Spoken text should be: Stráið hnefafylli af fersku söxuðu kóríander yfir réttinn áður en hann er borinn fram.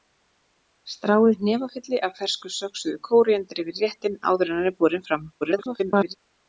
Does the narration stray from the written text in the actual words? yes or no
yes